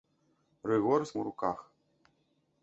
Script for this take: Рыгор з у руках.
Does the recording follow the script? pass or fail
pass